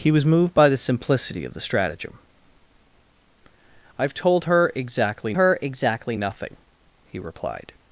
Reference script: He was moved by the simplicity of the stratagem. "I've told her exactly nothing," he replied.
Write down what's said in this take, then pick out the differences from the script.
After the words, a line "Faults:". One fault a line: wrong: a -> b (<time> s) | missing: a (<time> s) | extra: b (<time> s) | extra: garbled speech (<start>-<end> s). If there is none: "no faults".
He was moved by the simplicity of the stratagem. "I've told her exactly her exactly nothing," he replied.
Faults:
extra: her exactly (5.3 s)